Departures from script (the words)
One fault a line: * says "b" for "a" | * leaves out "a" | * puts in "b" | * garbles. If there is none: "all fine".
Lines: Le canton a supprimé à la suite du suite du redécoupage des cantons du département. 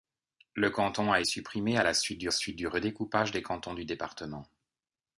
all fine